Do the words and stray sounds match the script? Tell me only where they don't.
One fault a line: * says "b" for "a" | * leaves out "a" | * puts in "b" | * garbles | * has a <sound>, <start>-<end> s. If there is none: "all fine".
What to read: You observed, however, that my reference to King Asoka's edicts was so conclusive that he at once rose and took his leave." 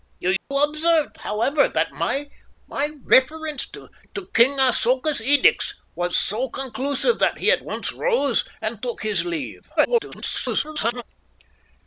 * has a dropout, 0.4-0.5 s
* garbles